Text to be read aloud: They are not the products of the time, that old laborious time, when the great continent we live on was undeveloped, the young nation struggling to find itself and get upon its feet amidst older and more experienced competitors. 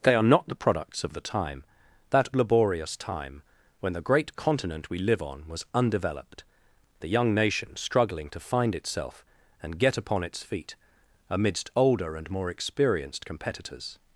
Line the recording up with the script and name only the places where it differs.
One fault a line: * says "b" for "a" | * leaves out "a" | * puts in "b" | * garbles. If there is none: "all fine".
* leaves out "old"